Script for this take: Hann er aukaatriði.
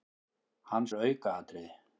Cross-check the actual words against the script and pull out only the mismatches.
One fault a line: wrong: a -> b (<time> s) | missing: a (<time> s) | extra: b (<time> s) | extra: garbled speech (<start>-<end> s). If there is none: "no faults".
no faults